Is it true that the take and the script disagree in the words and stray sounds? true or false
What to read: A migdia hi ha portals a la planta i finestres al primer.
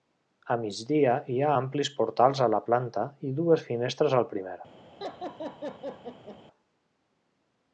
true